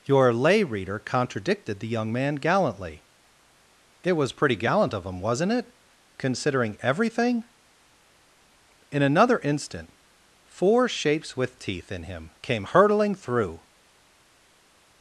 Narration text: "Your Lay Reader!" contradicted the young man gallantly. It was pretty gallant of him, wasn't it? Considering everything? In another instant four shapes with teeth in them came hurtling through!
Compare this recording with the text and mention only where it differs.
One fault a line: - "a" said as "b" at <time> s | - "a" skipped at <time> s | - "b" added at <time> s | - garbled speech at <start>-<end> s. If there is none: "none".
- "them" said as "him" at 12.0 s